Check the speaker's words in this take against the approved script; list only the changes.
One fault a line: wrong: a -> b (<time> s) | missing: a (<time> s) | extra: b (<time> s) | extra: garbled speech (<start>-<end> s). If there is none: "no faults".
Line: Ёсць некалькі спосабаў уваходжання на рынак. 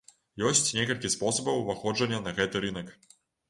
extra: гэты (2.4 s)